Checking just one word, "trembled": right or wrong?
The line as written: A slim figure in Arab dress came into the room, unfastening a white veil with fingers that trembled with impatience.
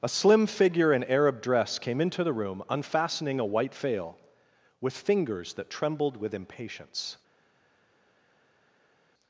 right